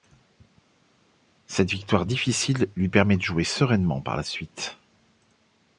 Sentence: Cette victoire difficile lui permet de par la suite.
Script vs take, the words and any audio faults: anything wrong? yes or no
yes